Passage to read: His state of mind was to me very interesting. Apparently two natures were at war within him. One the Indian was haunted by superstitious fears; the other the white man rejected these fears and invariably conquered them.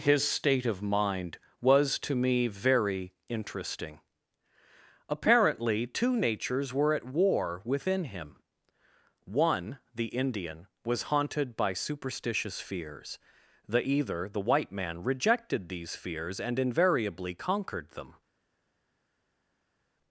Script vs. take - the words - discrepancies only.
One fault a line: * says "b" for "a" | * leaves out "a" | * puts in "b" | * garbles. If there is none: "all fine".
* says "either" for "other"